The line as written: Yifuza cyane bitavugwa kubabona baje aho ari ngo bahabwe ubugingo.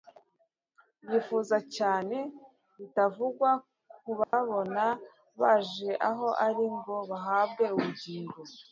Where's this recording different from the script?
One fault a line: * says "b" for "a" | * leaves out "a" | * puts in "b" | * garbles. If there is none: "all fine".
all fine